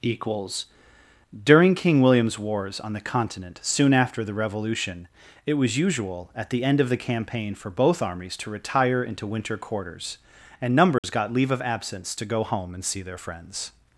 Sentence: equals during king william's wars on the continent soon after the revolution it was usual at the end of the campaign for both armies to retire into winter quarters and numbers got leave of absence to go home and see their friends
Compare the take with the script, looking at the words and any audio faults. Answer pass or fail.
fail